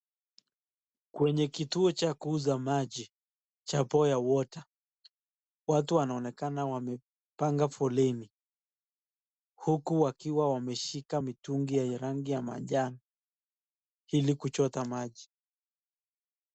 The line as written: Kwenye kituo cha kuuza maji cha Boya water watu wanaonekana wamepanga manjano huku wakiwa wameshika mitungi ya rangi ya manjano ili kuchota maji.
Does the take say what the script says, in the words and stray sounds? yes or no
no